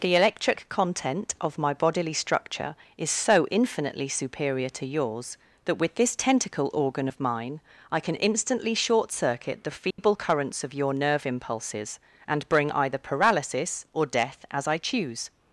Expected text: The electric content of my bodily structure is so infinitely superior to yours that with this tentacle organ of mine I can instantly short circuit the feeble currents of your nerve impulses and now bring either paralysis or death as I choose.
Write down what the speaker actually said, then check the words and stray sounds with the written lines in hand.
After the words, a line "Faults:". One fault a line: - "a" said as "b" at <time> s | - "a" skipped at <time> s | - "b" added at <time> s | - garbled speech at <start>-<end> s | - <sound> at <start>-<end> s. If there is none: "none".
The electric content of my bodily structure is so infinitely superior to yours that with this tentacle organ of mine I can instantly short circuit the feeble currents of your nerve impulses and bring either paralysis or death as I choose.
Faults:
- dropout at 9.9-10.0 s
- "now" skipped at 12.5 s